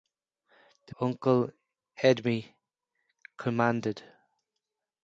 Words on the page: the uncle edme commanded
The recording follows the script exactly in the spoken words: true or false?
true